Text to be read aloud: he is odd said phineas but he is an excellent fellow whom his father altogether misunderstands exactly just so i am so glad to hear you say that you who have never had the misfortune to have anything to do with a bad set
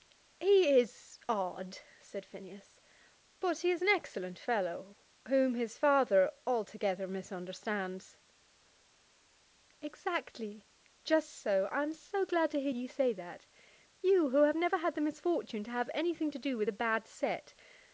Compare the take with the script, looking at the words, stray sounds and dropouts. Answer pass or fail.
pass